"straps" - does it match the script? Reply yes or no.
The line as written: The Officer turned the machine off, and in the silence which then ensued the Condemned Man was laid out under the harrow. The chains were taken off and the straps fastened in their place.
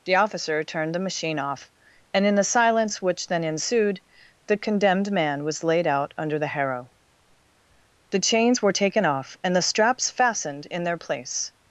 yes